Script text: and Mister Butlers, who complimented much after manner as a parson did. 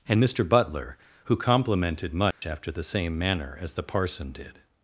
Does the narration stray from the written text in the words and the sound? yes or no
yes